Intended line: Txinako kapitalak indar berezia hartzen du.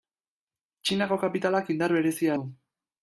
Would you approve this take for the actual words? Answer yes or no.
no